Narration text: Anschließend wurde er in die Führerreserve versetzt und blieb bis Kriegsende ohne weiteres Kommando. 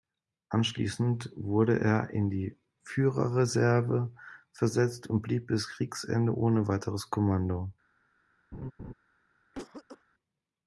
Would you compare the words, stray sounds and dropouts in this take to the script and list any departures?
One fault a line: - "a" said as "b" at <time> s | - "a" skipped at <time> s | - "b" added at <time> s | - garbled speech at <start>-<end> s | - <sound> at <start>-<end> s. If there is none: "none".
- laugh at 8.5-8.9 s
- cough at 9.5-10.0 s